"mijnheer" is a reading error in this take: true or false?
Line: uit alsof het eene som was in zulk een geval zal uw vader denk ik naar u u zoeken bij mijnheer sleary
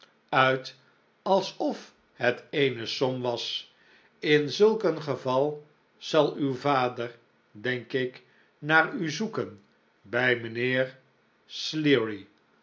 false